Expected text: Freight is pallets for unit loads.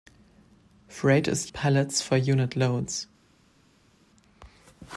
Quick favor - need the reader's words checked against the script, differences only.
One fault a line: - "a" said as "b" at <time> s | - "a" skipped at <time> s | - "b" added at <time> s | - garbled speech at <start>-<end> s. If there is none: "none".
none